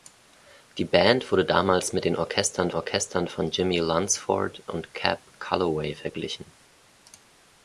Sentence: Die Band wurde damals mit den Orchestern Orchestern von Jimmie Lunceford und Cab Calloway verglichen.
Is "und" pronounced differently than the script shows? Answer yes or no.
no